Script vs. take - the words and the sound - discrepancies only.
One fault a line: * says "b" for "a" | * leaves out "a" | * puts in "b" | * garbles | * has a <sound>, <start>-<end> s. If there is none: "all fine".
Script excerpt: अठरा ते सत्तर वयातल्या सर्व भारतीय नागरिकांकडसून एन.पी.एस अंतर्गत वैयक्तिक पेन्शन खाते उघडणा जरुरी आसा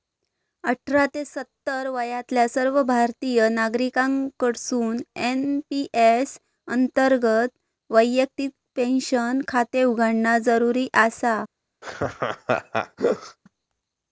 * has a laugh, 11.8-13.4 s